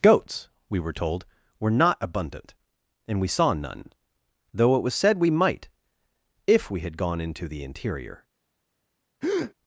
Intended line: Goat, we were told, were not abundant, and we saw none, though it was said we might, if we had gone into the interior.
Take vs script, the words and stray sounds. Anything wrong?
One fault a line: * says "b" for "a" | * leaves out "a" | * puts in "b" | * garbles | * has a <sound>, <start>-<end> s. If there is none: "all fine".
* says "Goats" for "Goat"
* has a breath, 9.2-9.5 s